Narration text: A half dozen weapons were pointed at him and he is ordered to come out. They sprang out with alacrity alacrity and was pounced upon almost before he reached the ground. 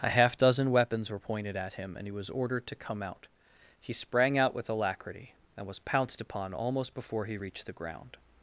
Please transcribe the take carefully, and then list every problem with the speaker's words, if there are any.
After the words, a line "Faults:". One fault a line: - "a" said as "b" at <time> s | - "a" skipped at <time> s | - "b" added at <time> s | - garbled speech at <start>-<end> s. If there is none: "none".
A half dozen weapons were pointed at him and he was ordered to come out. He sprang out with alacrity and was pounced upon almost before he reached the ground.
Faults:
- "is" said as "was" at 2.1 s
- "They" said as "He" at 3.8 s
- "alacrity" skipped at 5.3 s